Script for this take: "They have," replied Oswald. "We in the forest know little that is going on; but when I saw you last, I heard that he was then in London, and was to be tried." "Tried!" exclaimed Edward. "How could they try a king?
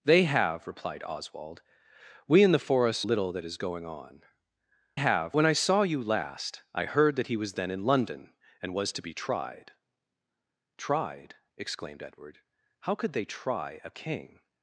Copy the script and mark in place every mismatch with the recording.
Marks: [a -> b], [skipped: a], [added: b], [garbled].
"They have," replied Oswald. "We in the forest [skipped: know] little that is going on; [but -> have] when I saw you last, I heard that he was then in London, and was to be tried." "Tried!" exclaimed Edward. "How could they try a king?